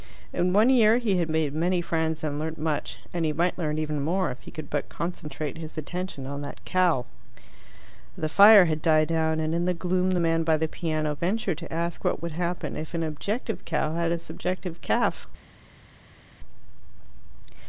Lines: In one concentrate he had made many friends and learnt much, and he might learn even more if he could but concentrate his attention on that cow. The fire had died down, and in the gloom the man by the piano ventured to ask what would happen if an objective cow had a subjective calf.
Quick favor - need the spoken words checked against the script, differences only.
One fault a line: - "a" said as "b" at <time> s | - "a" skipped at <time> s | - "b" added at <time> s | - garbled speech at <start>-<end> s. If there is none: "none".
- "concentrate" said as "year" at 0.7 s